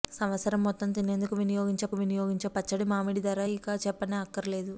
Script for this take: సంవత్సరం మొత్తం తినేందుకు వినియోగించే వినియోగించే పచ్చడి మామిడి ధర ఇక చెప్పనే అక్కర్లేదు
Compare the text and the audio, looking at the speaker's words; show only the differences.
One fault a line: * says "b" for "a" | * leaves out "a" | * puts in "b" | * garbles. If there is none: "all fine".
all fine